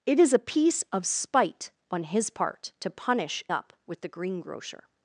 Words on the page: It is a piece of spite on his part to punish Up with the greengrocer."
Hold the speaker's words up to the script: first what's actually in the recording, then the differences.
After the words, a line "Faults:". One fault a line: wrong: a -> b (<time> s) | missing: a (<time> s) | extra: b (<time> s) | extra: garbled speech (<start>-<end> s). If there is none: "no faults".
It is a piece of spite on his part to punish Up with the greengrocer."
Faults:
no faults